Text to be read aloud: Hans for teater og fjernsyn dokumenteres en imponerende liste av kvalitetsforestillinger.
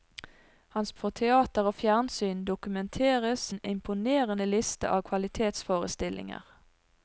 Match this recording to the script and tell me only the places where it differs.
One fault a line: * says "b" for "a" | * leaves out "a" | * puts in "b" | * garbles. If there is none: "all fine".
all fine